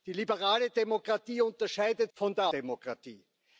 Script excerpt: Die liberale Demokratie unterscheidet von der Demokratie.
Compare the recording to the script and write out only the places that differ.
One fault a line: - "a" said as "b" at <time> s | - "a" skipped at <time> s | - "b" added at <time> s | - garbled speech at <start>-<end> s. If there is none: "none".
none